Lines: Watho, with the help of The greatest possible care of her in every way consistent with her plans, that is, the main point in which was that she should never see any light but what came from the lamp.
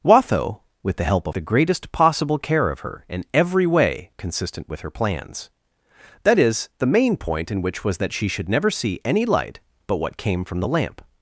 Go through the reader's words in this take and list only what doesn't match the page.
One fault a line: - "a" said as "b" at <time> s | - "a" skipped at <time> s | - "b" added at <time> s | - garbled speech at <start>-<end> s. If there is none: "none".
none